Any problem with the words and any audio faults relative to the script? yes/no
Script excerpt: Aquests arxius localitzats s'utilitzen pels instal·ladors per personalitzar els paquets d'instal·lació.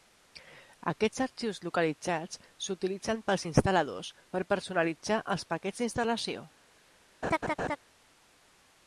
yes